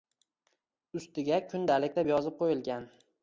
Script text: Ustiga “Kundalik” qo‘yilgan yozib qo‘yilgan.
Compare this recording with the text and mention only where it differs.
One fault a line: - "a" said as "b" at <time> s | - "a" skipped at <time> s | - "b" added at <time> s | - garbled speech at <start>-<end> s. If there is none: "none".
- "qo‘yilgan" said as "deb" at 2.0 s